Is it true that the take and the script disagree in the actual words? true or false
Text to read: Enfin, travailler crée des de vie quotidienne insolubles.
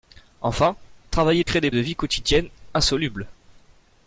false